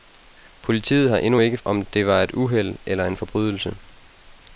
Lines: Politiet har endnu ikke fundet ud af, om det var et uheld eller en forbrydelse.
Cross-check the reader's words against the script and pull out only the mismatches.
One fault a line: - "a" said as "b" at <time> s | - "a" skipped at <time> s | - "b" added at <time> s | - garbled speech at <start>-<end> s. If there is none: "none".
- "fundet ud af" skipped at 1.6 s